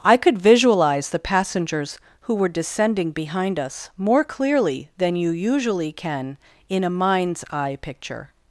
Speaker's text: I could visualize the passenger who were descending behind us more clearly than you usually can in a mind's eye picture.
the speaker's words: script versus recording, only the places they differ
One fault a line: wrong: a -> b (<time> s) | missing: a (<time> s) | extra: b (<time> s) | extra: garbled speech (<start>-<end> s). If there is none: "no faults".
wrong: passenger -> passengers (1.2 s)